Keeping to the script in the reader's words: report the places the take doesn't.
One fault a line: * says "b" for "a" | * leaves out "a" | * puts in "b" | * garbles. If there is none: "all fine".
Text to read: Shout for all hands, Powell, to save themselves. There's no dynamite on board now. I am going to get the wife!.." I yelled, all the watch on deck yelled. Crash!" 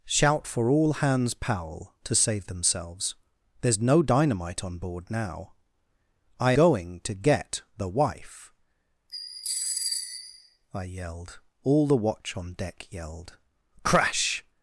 * leaves out "am"